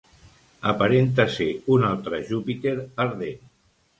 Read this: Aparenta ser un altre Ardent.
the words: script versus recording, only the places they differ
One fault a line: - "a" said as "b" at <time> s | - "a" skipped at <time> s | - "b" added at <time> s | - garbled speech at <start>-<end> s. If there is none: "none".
- "Júpiter" added at 2.3 s